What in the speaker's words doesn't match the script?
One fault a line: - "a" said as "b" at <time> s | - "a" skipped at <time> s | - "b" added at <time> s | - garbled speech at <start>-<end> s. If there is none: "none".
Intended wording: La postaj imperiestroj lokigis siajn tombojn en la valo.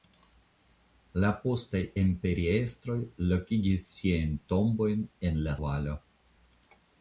none